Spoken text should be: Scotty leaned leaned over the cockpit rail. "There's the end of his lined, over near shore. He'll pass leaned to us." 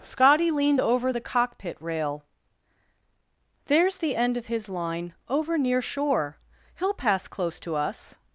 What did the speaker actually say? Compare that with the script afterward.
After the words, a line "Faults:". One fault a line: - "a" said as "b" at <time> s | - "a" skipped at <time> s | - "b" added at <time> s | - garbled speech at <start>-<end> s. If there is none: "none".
Scotty leaned over the cockpit rail. "There's the end of his line, over near shore. He'll pass close to us."
Faults:
- "leaned" skipped at 0.8 s
- "lined" said as "line" at 4.7 s
- "leaned" said as "close" at 7.3 s